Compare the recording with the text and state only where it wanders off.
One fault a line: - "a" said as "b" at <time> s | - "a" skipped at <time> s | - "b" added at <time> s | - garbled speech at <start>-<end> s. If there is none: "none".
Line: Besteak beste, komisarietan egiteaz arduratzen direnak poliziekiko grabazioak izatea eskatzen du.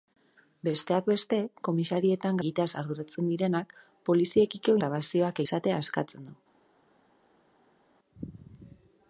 none